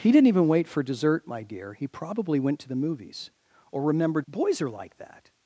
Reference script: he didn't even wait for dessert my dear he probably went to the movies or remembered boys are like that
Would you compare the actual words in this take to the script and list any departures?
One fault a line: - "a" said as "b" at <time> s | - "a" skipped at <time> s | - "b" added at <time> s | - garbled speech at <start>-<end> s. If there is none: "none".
none